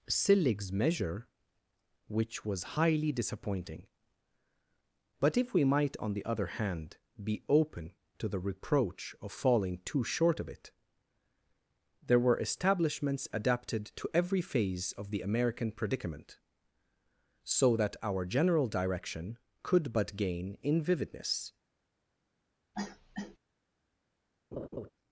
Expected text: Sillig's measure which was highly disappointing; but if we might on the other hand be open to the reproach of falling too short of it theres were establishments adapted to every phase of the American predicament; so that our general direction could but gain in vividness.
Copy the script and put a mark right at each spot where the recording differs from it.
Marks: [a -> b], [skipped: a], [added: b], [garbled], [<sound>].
Sillig's measure which was highly disappointing; but if we might on the other hand be open to the reproach of falling too short of it [theres -> there] were establishments adapted to every phase of the American predicament; so that our general direction could but gain in vividness. [cough] [laugh]